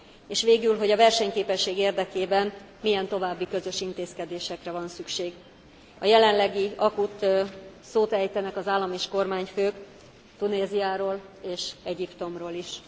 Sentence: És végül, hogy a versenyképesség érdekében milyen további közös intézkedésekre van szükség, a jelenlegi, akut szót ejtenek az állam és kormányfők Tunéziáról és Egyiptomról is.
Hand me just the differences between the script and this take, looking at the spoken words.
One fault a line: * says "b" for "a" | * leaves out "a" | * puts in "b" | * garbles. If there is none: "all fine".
all fine